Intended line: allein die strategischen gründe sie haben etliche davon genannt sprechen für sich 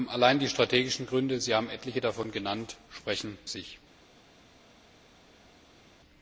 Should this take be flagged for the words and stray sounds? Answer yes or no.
yes